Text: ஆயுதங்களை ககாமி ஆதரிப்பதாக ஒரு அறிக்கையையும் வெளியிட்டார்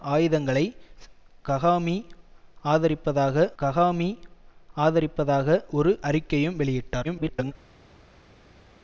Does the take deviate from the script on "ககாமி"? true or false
false